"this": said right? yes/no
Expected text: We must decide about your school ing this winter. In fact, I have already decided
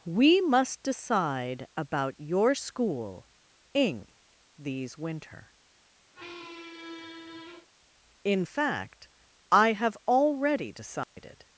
no